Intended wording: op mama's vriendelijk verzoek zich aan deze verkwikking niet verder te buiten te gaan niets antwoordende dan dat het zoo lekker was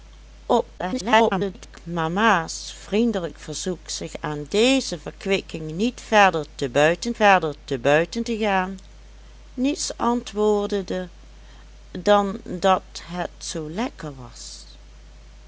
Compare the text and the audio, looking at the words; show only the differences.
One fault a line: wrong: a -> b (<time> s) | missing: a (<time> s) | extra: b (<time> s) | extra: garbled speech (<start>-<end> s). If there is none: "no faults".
extra: garbled speech (0.8-1.8 s)
extra: verder te buiten (7.2 s)